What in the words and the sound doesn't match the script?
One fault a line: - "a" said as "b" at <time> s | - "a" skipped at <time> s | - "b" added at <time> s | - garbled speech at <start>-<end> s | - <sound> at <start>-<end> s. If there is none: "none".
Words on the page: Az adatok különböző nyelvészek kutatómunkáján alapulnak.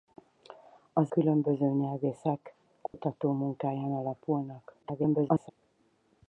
- "adatok" skipped at 1.1 s
- dropout at 2.9-2.9 s
- garbled speech at 4.8-5.5 s